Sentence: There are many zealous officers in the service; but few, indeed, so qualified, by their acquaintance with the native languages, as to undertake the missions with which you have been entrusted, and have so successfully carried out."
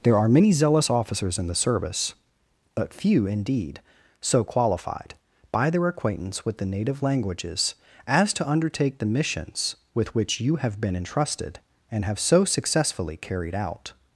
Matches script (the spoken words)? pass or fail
pass